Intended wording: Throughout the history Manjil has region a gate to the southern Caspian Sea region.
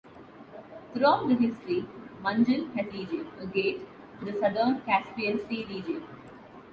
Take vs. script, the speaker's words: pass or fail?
pass